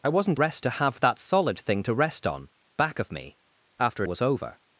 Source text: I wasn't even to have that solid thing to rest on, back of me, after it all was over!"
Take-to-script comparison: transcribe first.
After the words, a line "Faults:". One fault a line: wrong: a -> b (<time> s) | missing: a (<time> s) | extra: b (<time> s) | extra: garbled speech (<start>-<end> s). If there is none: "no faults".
I wasn't rest to have that solid thing to rest on, back of me, after was over!"
Faults:
wrong: even -> rest (0.3 s)
missing: it all (4.0 s)